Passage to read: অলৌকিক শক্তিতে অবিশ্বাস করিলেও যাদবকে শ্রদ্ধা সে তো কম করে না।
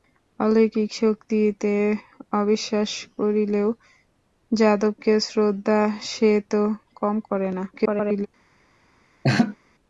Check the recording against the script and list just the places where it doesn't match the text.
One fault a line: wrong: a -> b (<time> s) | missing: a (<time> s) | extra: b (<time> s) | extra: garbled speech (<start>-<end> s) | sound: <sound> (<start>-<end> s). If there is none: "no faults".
extra: garbled speech (7.7-8.3 s)
sound: laugh (9.2-9.6 s)